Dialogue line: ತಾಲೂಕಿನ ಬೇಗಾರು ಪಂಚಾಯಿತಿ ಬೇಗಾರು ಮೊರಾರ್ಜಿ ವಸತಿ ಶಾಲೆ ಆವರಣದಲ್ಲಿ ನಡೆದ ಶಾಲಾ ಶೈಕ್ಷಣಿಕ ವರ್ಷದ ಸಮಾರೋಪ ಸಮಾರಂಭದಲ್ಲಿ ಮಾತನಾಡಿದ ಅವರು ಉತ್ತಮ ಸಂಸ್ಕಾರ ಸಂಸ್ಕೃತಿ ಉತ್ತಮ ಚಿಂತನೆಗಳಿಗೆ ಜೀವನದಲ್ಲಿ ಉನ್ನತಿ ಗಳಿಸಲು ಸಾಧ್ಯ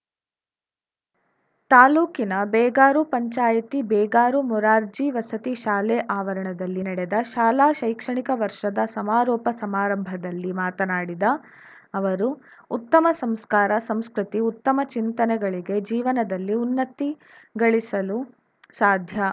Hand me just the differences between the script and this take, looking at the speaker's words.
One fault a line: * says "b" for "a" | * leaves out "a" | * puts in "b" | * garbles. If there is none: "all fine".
all fine